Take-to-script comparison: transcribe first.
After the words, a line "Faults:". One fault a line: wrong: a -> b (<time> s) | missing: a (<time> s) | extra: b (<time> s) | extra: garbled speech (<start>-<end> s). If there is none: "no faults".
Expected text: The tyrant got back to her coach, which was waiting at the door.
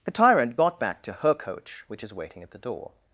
The tyrant got back to her coach, which is waiting at the door.
Faults:
wrong: was -> is (2.0 s)